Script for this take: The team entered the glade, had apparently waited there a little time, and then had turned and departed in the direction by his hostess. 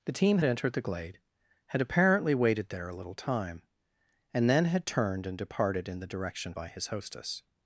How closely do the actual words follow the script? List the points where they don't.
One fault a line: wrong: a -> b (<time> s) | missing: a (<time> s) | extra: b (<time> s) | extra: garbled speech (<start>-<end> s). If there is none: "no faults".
no faults